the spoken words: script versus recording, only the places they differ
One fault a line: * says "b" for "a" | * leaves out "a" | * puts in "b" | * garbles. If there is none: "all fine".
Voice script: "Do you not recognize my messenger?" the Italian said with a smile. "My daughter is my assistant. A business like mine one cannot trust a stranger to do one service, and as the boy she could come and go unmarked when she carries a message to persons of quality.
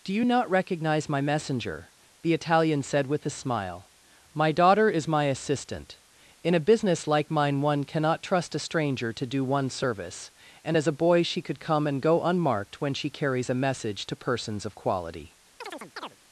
* puts in "In"
* says "a" for "the"